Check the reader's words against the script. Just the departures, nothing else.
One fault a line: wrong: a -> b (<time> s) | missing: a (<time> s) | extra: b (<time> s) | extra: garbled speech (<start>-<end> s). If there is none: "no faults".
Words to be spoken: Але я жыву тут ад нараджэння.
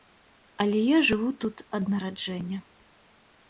no faults